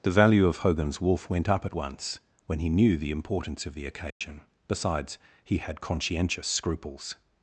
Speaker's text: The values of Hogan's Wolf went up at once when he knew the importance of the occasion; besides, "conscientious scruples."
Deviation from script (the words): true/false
true